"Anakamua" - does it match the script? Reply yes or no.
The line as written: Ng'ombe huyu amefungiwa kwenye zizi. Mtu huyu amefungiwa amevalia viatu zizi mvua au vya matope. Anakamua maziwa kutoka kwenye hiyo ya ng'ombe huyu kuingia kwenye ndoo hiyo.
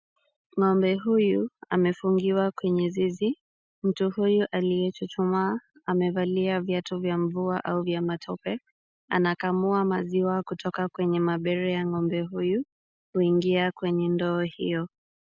yes